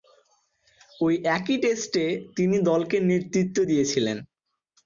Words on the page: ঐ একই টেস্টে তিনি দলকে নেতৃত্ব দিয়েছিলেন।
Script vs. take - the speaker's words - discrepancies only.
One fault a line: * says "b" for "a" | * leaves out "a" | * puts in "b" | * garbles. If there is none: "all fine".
all fine